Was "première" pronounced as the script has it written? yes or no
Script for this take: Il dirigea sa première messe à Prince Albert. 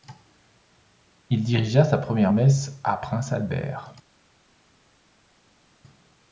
yes